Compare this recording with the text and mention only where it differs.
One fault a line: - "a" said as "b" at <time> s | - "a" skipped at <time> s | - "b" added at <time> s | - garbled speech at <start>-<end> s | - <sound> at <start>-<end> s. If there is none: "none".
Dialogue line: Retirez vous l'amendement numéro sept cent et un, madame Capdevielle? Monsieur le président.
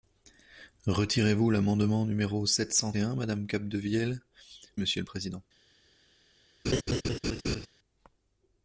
- laugh at 6.6-7.7 s